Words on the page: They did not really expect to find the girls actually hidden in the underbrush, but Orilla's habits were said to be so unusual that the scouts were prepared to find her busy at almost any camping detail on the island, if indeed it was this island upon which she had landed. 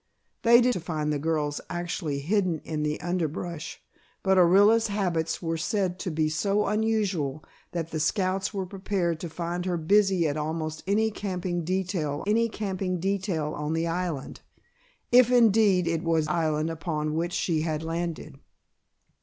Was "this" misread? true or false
true